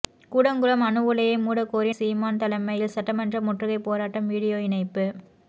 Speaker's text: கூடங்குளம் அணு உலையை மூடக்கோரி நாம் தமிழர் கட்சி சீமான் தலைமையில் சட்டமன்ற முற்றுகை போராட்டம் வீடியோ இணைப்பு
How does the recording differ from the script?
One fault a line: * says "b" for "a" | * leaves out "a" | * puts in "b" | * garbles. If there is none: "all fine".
* leaves out "நாம் தமிழர் கட்சி"